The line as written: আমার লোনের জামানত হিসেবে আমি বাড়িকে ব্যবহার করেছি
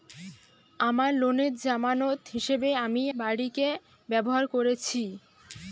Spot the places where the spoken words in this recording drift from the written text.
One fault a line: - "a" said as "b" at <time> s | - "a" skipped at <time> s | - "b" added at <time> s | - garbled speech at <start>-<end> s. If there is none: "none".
none